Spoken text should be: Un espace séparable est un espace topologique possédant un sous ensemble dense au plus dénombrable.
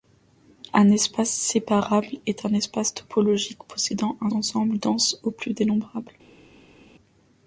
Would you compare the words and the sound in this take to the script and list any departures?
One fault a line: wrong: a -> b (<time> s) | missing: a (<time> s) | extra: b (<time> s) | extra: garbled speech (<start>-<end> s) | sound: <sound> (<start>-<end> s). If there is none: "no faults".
missing: sous (4.3 s)